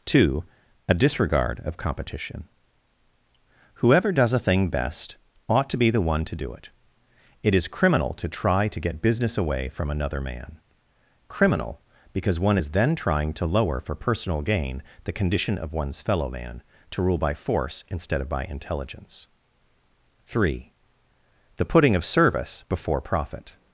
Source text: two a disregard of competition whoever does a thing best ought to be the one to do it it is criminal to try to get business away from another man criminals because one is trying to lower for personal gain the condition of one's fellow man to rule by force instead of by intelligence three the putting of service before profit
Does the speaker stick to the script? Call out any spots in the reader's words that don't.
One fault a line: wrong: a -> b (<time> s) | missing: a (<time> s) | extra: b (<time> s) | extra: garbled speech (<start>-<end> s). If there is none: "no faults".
wrong: criminals -> criminal (11.3 s)
extra: then (12.7 s)